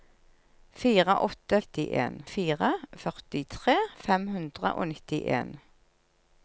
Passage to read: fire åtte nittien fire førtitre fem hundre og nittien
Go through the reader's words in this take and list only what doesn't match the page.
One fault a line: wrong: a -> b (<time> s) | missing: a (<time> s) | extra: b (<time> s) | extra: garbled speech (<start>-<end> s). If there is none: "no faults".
no faults